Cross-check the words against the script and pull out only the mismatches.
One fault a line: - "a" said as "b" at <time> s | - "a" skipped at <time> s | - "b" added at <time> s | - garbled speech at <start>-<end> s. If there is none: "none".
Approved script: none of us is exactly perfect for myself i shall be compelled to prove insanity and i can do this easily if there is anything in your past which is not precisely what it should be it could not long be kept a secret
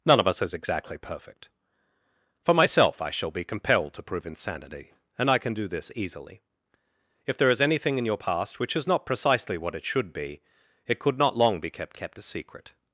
- "kept" added at 11.9 s